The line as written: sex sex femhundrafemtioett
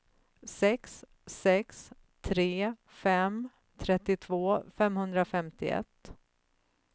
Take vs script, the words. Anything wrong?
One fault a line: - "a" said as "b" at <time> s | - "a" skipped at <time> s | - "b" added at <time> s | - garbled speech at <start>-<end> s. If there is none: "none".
- "tre fem trettiotvå" added at 2.2 s